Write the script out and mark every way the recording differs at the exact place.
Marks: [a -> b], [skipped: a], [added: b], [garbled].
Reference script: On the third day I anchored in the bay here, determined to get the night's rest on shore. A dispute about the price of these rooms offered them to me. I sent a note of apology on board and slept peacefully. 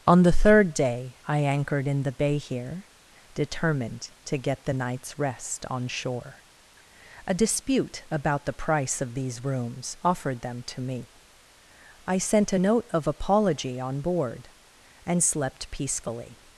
On the third day I anchored in the bay here, determined to get the night's rest on shore. A dispute about the price of these rooms offered them to me. I sent a note of apology on board and slept peacefully.